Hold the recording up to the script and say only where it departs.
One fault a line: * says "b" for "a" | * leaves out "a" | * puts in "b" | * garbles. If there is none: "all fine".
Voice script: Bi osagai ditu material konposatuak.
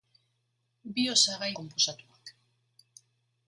* leaves out "ditu material"